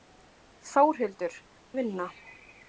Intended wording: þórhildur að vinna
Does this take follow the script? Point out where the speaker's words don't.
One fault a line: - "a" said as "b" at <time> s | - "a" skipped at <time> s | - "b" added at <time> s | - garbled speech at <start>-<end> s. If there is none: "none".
none